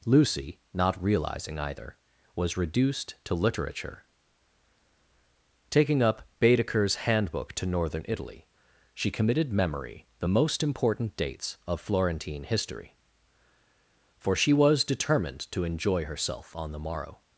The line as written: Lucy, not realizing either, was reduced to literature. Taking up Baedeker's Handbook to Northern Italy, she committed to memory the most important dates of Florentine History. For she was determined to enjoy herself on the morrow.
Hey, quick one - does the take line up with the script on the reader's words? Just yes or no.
no